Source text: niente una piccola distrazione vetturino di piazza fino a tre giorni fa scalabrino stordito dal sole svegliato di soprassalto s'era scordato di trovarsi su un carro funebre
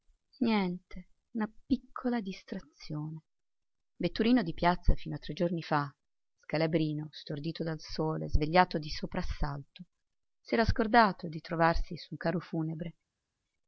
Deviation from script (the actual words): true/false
false